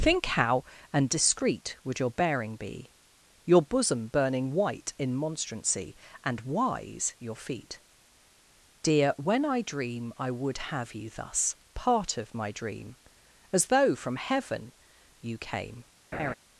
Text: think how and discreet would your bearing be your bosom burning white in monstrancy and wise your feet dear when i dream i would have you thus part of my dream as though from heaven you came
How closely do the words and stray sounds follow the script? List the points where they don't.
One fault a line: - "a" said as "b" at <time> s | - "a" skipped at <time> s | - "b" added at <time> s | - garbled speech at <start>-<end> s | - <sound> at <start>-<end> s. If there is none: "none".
- laugh at 16.1-16.3 s